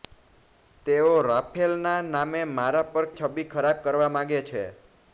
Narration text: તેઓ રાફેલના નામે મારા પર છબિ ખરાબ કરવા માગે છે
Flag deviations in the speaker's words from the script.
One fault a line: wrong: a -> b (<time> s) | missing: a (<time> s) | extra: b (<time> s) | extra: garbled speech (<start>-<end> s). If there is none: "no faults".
no faults